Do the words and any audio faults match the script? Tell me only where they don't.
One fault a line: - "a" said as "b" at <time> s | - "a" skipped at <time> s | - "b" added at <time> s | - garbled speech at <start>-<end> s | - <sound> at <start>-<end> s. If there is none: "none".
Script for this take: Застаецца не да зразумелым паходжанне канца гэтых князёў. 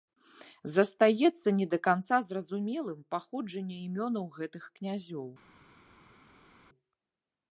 - "канца" added at 1.9 s
- "канца" said as "імёнаў" at 3.9 s